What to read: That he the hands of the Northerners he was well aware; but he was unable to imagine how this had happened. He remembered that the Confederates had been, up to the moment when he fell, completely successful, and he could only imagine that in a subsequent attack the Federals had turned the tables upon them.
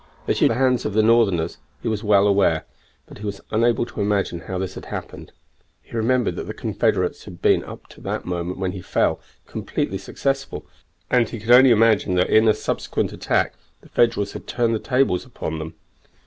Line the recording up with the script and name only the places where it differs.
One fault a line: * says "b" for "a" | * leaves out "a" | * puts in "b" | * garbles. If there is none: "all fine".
all fine